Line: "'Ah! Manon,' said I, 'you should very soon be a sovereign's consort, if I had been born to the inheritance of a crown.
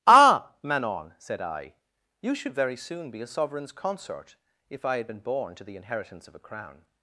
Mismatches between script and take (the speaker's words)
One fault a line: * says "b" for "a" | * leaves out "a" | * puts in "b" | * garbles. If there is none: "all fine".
all fine